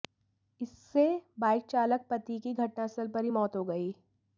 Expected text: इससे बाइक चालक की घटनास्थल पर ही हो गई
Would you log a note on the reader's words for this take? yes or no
yes